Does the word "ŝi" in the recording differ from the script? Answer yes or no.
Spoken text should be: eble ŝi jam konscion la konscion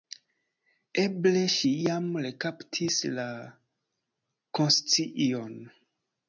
no